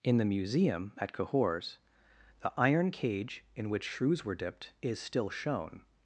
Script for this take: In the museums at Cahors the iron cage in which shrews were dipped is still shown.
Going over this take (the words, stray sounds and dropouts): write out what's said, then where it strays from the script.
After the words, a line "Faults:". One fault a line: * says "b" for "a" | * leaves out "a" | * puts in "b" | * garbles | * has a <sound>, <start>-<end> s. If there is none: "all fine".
In the museum at Cahors the iron cage in which shrews were dipped is still shown.
Faults:
* says "museum" for "museums"